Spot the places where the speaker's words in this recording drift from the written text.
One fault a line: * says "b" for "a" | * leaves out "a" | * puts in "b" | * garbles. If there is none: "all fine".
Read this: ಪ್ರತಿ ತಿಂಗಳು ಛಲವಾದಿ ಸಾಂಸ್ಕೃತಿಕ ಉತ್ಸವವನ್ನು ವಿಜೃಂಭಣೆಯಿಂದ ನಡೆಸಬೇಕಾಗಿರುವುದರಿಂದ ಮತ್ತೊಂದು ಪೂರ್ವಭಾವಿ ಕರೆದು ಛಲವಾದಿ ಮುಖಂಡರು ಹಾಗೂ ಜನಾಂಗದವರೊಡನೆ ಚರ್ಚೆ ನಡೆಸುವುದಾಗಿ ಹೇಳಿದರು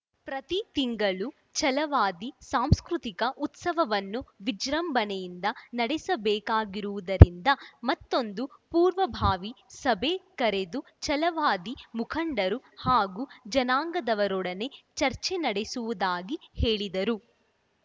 * puts in "ಸಭೆ"